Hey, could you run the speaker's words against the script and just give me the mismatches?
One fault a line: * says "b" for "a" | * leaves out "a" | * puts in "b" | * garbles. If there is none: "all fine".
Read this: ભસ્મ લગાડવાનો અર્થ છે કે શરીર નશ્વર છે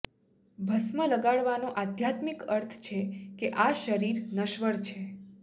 * puts in "આધ્યાત્મિક"
* puts in "આ"